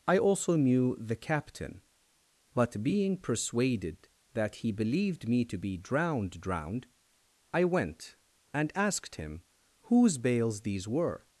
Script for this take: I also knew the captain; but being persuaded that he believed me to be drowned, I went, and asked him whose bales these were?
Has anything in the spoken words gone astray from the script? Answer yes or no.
yes